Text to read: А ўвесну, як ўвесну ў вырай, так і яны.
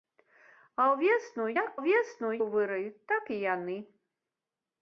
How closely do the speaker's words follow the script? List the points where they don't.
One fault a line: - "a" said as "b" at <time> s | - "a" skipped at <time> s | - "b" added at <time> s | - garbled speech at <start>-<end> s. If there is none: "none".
none